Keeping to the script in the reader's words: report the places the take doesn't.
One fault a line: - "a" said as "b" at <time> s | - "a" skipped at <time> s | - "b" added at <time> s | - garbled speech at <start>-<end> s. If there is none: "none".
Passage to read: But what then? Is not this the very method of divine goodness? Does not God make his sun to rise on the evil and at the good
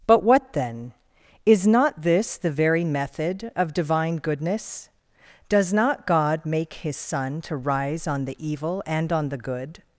- "at" said as "on" at 9.1 s